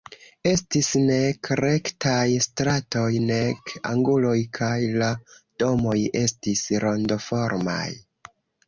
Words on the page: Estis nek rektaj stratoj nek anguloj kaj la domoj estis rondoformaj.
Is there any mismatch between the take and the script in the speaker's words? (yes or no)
no